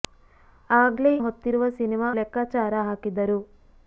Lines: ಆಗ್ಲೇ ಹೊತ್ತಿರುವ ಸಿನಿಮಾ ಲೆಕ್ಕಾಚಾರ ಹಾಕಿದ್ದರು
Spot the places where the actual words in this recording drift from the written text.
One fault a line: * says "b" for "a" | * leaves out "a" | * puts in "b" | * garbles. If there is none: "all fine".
all fine